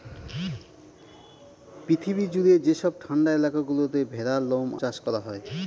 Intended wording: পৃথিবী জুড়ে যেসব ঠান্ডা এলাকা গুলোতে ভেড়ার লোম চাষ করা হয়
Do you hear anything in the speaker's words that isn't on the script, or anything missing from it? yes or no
no